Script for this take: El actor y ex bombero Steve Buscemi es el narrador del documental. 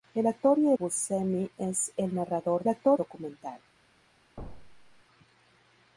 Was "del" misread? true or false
true